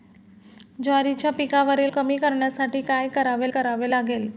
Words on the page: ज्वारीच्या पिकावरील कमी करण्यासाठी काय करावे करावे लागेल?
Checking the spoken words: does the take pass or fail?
pass